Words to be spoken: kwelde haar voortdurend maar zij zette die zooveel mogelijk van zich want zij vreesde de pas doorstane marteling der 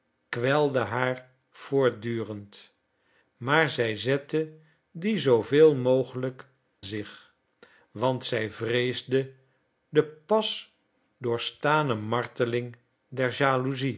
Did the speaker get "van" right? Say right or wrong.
wrong